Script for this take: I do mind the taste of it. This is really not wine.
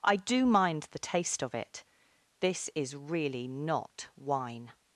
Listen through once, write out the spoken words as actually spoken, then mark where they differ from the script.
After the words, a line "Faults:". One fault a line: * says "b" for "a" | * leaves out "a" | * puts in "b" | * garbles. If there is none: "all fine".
I do mind the taste of it. This is really not wine.
Faults:
all fine